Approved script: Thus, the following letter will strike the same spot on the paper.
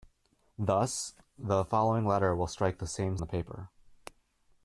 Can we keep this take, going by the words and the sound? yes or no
no